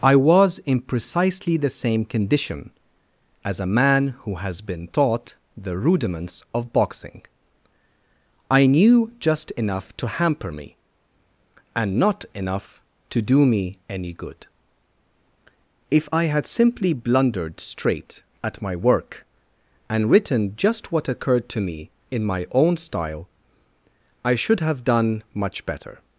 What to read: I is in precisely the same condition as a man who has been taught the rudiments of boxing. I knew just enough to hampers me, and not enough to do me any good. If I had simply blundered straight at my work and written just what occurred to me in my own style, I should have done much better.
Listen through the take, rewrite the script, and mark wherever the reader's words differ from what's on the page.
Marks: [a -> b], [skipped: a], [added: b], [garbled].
I [is -> was] in precisely the same condition as a man who has been taught the rudiments of boxing. I knew just enough to [hampers -> hamper] me, and not enough to do me any good. If I had simply blundered straight at my work and written just what occurred to me in my own style, I should have done much better.